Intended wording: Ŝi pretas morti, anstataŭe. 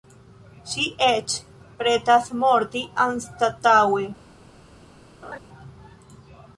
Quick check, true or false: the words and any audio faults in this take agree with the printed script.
false